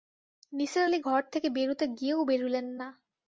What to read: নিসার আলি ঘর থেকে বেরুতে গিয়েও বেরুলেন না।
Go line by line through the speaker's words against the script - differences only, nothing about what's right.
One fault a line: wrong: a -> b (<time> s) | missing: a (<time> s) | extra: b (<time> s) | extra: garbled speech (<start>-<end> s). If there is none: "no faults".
no faults